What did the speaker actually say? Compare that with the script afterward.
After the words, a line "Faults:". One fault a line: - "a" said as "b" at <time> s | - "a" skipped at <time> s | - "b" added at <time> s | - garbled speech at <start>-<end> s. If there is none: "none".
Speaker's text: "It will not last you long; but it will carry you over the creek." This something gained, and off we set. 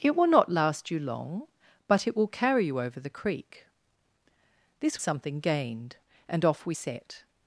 "It will not last you long; but it will carry you over the creek." This something gained, and off we set.
Faults:
none